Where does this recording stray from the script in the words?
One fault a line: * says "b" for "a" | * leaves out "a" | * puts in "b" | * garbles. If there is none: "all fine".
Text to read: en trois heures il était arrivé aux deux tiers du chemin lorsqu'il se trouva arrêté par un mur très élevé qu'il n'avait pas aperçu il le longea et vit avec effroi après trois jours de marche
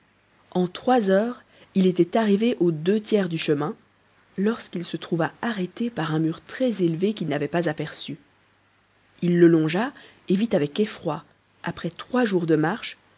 all fine